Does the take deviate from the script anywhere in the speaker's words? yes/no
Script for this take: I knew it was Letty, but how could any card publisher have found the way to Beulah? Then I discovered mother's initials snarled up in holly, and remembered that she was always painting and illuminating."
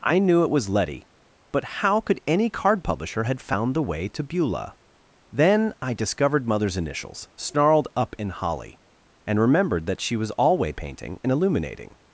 yes